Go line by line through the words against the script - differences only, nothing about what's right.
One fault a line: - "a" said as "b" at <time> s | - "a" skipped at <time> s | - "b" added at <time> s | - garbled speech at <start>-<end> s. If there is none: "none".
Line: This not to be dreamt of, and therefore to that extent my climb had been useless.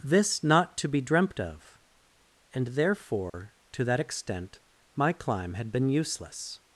none